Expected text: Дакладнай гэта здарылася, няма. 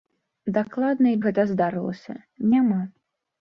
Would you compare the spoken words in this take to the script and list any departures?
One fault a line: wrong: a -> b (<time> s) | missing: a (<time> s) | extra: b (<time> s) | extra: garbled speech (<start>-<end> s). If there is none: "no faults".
no faults